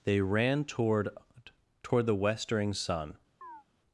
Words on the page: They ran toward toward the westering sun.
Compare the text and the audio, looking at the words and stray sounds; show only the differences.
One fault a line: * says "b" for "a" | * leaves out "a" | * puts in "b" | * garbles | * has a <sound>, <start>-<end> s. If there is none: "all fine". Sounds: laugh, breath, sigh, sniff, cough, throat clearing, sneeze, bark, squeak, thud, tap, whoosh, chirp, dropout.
* has a chirp, 3.4-3.6 s